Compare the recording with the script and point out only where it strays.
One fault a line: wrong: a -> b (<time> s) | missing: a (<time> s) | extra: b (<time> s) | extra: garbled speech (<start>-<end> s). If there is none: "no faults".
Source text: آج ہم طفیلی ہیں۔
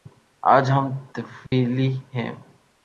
no faults